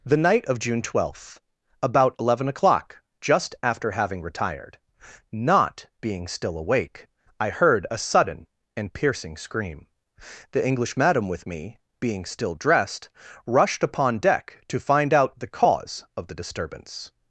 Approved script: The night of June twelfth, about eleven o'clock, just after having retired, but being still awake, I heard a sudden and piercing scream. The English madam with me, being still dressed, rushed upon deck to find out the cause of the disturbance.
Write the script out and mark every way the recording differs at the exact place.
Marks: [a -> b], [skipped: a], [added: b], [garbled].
The night of June twelfth, about eleven o'clock, just after having retired, [but -> not] being still awake, I heard a sudden and piercing scream. The English madam with me, being still dressed, rushed upon deck to find out the cause of the disturbance.